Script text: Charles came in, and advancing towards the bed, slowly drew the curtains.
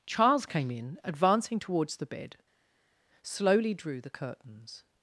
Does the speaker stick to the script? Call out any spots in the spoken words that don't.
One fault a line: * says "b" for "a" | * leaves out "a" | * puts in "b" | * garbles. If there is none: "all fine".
* leaves out "and"